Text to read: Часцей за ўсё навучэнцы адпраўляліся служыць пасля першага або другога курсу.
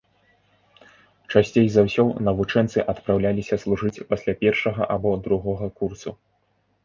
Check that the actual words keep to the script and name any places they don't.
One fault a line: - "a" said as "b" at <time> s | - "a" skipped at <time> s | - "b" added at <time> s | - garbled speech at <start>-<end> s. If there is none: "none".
none